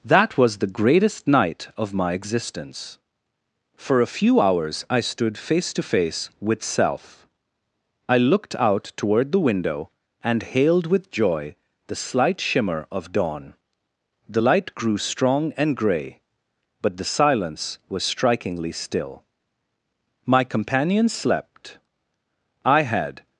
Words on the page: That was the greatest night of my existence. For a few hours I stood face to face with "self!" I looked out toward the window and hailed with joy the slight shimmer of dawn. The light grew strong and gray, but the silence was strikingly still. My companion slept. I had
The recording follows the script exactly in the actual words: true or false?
true